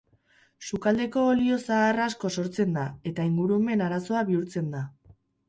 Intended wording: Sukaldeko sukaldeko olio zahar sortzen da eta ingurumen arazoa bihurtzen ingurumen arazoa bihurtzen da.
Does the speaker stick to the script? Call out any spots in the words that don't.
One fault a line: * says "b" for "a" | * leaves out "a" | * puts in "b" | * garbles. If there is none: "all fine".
* leaves out "sukaldeko"
* puts in "asko"
* leaves out "ingurumen arazoa bihurtzen"